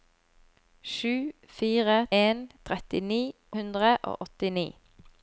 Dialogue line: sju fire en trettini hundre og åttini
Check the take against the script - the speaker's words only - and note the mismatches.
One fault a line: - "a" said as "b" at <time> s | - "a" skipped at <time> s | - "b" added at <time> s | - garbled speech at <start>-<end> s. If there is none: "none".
none